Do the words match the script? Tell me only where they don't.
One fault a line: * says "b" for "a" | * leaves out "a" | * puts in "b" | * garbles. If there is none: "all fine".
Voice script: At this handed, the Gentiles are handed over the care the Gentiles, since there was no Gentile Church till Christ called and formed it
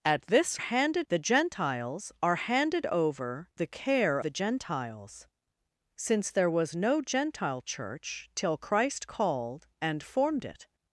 all fine